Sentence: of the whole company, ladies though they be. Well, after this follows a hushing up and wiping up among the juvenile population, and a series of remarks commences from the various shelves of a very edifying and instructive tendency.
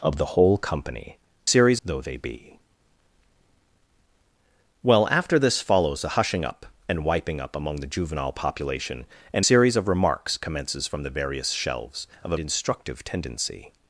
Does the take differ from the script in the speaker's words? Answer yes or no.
yes